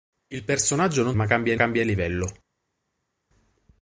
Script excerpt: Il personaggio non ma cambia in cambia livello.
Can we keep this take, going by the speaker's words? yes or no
yes